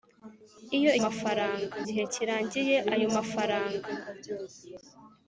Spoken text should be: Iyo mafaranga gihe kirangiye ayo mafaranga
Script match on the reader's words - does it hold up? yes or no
yes